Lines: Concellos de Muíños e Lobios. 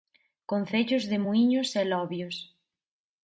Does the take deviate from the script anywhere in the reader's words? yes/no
no